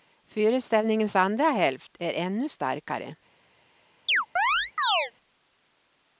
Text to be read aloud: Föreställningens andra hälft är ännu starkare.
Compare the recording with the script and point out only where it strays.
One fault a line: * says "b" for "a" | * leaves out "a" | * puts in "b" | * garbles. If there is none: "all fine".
all fine